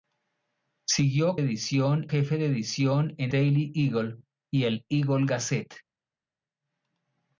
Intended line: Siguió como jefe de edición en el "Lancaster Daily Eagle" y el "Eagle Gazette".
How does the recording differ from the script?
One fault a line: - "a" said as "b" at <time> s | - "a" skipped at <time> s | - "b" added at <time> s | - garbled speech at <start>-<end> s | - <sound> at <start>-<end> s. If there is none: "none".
- "como" said as "edición" at 1.4 s
- "el Lancaster" skipped at 3.3 s